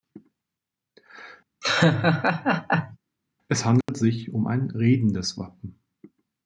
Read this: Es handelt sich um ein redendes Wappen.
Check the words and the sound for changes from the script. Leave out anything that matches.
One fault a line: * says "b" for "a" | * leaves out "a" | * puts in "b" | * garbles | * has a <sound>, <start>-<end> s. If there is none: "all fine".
* has a laugh, 1.6-3.0 s
* has a dropout, 3.8-3.9 s